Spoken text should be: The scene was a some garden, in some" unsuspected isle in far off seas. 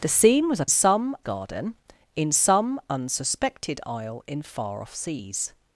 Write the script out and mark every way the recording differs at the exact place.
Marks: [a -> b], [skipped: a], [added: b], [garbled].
The scene was a some garden, in some" unsuspected isle in far off seas.